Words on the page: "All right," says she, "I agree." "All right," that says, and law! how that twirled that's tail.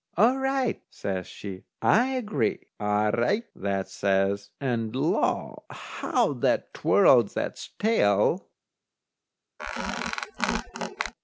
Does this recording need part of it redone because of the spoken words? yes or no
no